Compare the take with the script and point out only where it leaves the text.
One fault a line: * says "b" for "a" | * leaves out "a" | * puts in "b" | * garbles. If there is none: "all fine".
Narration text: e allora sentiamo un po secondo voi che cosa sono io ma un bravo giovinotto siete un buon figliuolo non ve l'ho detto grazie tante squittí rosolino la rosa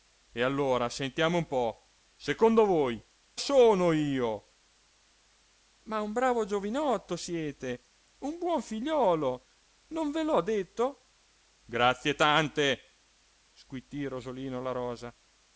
* leaves out "che cosa"